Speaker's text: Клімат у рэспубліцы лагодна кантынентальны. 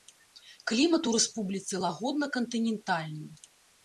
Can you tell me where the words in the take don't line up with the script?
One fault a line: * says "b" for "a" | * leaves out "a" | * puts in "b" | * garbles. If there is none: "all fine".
all fine